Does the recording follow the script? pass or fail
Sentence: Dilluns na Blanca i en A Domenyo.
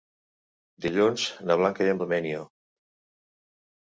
pass